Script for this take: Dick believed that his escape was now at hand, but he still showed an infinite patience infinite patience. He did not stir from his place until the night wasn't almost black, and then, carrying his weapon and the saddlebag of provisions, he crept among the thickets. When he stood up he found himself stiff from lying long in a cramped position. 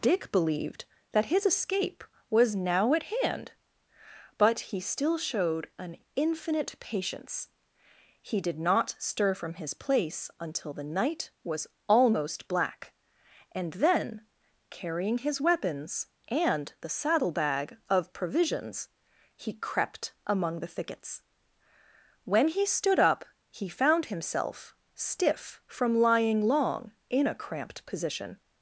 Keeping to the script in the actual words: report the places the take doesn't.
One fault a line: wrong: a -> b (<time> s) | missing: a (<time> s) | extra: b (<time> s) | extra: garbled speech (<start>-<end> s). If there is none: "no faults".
missing: infinite patience (7.5 s)
wrong: wasn't -> was (11.4 s)
wrong: weapon -> weapons (15.4 s)